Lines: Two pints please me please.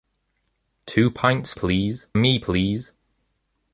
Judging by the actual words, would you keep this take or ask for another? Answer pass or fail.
pass